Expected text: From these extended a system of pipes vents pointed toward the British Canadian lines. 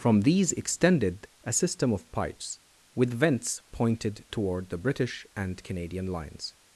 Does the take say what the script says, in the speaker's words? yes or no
no